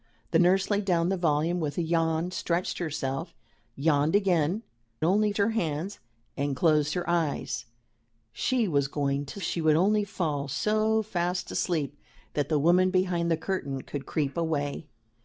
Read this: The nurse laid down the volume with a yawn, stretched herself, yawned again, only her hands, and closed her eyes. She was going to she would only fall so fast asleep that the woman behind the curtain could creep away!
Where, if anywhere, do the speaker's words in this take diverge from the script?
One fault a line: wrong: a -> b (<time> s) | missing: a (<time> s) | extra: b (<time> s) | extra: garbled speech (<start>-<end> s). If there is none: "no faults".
no faults